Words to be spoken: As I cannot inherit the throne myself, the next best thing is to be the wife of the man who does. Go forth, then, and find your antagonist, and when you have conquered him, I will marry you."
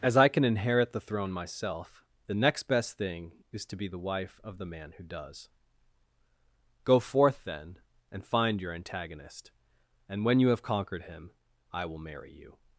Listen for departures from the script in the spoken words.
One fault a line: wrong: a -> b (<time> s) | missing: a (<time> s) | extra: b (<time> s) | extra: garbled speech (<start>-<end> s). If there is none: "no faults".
wrong: cannot -> can (0.3 s)